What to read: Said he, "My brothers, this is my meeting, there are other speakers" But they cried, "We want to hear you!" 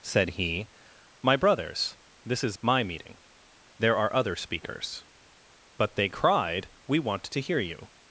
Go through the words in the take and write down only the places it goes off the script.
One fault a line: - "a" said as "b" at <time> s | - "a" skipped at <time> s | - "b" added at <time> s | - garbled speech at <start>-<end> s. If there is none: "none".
none